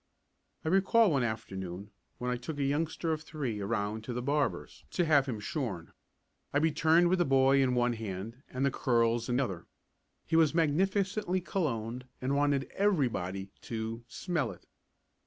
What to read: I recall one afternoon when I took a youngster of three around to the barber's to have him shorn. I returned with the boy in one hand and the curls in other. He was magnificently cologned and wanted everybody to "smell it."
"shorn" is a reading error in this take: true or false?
false